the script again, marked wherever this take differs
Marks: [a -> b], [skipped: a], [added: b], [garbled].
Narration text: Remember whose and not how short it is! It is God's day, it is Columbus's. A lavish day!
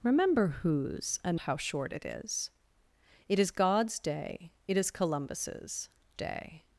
Remember whose and [skipped: not] how short it is! It is God's day, it is Columbus's. [skipped: A lavish] day!